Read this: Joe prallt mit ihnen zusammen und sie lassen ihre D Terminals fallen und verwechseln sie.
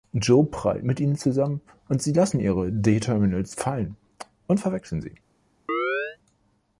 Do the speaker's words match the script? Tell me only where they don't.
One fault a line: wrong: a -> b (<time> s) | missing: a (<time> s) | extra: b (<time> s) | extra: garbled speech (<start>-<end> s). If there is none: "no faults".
no faults